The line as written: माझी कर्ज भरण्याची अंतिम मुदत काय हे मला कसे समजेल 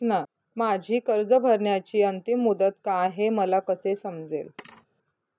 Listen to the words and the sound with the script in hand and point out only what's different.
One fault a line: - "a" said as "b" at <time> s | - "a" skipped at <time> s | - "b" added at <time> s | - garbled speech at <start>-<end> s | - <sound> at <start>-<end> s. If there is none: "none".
- thud at 4.6-4.9 s